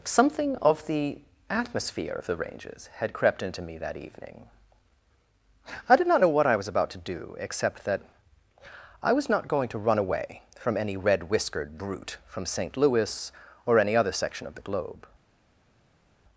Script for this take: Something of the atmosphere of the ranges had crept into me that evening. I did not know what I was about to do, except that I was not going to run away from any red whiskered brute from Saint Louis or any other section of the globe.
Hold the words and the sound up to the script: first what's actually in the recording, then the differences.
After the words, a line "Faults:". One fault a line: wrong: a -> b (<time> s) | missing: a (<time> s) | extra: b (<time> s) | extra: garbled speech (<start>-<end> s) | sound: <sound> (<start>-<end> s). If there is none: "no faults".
Something of the atmosphere of the ranges had crept into me that evening. I did not know what I was about to do, except that I was not going to run away from any red whiskered brute from Saint Louis or any other section of the globe.
Faults:
no faults